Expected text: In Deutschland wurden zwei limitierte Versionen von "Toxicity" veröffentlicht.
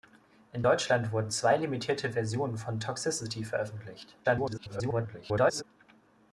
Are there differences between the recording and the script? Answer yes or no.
yes